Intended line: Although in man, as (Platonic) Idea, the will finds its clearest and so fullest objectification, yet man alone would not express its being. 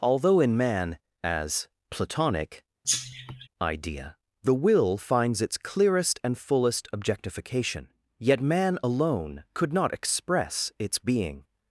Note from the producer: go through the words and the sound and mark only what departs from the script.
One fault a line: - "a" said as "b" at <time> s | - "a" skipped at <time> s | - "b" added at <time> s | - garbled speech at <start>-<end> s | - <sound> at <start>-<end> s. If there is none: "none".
- cough at 2.8-3.5 s
- "so" skipped at 6.4 s
- "would" said as "could" at 9.5 s